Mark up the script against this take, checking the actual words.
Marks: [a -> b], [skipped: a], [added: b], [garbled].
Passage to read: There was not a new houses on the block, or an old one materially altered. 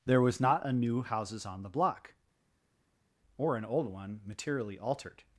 There was not a new houses on the block, or an old one materially altered.